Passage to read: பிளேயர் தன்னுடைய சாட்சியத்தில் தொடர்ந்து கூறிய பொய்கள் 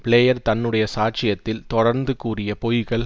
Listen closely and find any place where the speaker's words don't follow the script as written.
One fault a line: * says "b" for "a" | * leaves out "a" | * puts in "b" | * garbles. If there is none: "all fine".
all fine